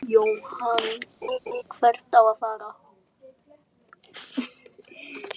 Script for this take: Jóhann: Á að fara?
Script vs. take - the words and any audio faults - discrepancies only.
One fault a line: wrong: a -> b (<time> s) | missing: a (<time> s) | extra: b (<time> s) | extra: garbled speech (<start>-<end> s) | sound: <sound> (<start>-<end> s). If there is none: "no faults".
sound: laugh (1.2-1.6 s)
extra: Hvert (1.8 s)